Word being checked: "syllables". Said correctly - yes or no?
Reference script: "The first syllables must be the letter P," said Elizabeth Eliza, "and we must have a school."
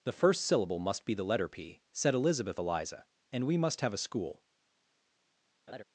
no